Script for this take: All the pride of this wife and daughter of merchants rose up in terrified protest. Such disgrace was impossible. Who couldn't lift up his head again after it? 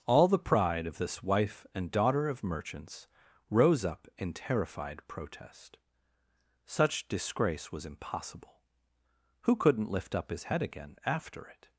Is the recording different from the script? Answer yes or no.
no